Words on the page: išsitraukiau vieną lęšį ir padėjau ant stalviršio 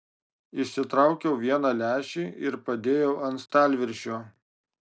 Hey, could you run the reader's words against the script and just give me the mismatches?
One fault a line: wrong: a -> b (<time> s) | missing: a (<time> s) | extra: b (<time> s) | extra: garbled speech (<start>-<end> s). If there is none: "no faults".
no faults